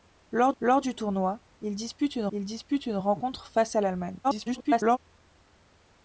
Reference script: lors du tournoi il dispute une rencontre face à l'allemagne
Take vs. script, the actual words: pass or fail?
fail